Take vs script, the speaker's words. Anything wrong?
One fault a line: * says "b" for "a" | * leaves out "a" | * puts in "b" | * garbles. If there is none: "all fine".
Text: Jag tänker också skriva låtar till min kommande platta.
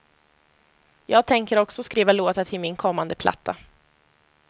all fine